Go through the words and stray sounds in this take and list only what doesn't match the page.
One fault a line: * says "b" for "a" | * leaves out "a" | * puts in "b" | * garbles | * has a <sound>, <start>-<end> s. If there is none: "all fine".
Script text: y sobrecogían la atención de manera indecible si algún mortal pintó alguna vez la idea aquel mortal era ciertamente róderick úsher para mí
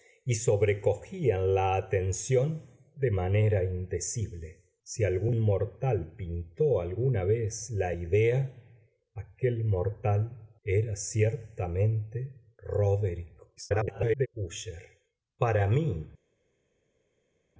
* garbles